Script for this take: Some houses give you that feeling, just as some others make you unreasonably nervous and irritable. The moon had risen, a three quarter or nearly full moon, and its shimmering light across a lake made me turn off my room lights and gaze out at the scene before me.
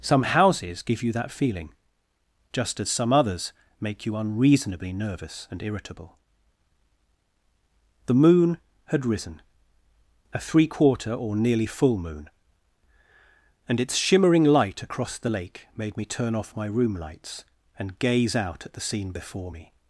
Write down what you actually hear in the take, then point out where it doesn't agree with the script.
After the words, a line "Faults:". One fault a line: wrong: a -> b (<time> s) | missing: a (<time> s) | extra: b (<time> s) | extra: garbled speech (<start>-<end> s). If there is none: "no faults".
Some houses give you that feeling, just as some others make you unreasonably nervous and irritable. The moon had risen, a three quarter or nearly full moon, and its shimmering light across the lake made me turn off my room lights and gaze out at the scene before me.
Faults:
wrong: a -> the (15.2 s)